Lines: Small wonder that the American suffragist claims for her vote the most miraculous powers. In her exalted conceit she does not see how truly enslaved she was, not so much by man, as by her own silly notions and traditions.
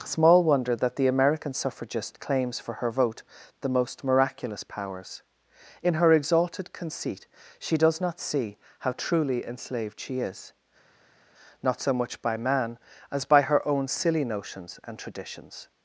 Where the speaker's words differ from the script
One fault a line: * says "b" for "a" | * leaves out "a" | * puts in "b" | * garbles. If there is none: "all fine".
* says "is" for "was"